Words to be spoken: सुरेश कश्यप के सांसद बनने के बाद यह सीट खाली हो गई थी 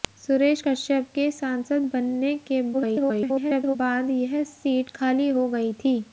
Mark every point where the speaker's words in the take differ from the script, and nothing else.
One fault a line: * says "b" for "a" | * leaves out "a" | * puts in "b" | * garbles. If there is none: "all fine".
* garbles